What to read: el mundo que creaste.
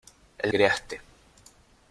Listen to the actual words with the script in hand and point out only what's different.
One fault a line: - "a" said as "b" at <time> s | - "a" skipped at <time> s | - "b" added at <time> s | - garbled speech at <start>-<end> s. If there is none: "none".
- "mundo que" skipped at 0.5 s